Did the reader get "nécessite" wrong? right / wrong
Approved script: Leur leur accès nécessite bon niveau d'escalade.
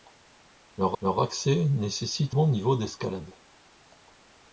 right